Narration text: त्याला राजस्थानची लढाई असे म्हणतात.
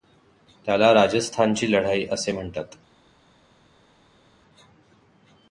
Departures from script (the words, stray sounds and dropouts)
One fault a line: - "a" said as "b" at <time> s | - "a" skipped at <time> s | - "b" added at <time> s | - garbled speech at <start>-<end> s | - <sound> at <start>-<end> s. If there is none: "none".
none